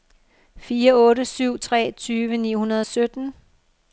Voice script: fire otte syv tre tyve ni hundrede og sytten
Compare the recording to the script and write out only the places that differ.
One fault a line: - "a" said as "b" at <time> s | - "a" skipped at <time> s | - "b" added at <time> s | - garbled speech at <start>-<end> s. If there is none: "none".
none